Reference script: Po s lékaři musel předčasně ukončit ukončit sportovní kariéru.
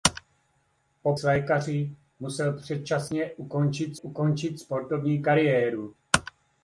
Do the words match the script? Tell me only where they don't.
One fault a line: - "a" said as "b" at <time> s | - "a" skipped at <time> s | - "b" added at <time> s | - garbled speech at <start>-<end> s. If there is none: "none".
none